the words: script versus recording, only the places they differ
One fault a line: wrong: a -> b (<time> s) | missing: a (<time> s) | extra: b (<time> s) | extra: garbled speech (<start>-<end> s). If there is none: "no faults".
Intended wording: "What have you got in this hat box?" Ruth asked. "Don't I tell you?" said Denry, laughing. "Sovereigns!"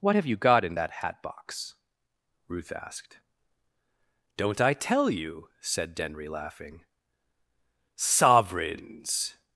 wrong: this -> that (0.7 s)